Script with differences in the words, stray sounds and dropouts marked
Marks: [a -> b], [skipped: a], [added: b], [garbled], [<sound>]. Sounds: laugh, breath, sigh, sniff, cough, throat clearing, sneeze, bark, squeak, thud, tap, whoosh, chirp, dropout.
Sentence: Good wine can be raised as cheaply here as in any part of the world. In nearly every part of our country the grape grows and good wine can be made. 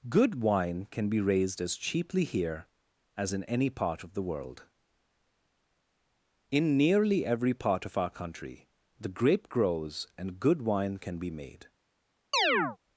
Good wine can be raised as cheaply here as in any part of the world. In nearly every part of our country the grape grows and good wine can be made. [chirp]